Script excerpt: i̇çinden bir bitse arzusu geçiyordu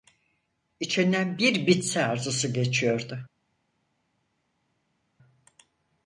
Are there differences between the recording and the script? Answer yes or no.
no